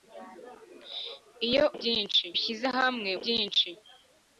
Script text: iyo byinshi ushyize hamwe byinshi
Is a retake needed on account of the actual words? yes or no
no